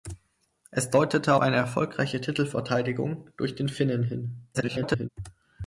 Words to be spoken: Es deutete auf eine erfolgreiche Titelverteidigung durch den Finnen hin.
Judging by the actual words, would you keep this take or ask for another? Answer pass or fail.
fail